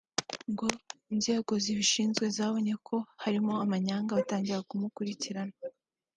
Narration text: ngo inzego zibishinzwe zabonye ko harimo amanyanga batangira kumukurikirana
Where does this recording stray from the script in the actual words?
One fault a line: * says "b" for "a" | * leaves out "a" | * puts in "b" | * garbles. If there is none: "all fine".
all fine